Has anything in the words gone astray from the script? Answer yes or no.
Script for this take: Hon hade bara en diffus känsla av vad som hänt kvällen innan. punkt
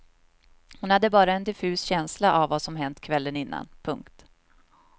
no